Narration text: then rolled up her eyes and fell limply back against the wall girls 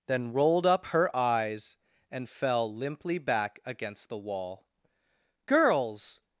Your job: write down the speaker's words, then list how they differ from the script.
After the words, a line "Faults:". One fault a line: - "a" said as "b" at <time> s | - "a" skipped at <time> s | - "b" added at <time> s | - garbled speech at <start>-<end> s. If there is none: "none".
then rolled up her eyes and fell limply back against the wall girls
Faults:
none